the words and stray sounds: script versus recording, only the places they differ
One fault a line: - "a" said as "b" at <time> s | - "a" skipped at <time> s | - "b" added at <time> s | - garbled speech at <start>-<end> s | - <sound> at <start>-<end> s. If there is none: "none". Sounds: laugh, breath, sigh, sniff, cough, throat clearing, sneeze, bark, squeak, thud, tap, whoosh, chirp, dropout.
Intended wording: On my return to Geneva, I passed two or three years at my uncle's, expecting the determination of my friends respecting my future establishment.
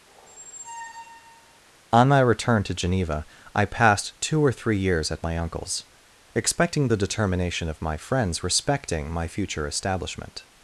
- squeak at 0.1-1.6 s